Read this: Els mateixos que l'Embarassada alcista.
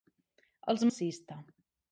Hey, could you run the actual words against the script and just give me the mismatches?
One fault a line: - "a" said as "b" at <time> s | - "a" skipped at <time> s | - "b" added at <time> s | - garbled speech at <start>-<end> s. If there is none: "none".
- "mateixos que l'Embarassada" skipped at 0.8 s